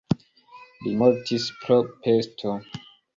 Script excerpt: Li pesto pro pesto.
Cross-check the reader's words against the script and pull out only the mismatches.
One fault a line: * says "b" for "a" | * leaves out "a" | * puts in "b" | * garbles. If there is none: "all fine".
* says "mortis" for "pesto"